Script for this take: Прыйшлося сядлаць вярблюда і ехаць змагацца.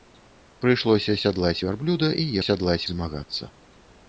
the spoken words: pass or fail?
fail